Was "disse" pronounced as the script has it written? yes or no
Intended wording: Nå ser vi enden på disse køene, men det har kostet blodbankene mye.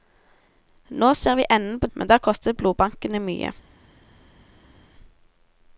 no